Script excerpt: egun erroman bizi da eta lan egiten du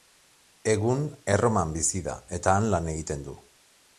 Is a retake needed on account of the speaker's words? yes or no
yes